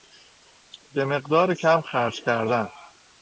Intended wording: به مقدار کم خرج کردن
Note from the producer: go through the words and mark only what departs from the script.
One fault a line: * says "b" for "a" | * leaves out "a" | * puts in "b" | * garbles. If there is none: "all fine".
all fine